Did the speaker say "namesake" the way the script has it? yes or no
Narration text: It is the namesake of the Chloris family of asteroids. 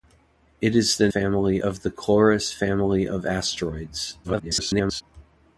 no